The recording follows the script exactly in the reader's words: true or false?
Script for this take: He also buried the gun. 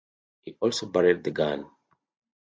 true